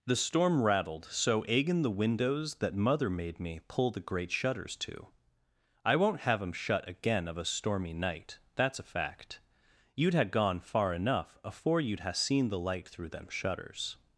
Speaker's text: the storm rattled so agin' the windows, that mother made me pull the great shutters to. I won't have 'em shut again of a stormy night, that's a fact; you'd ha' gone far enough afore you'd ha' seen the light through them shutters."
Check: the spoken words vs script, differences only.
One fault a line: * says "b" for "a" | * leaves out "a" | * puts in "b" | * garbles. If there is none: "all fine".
all fine